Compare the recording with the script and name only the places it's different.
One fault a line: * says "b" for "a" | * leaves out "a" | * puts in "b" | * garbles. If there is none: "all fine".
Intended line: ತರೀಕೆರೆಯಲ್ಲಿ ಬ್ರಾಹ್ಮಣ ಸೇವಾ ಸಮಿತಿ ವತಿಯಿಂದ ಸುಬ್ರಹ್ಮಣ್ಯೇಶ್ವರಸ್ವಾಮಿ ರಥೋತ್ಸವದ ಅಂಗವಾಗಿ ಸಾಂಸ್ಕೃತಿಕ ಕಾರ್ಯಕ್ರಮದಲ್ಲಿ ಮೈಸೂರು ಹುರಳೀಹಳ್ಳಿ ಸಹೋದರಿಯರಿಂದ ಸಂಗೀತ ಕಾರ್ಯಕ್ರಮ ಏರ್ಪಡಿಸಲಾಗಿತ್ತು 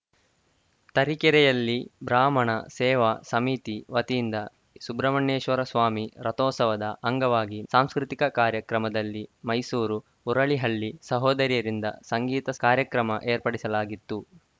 all fine